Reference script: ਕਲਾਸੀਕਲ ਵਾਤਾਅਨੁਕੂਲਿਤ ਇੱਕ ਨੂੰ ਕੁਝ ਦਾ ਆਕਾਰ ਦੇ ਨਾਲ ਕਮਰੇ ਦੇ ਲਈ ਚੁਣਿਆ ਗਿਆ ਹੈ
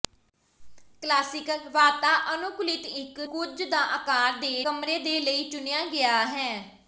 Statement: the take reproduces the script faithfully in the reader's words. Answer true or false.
false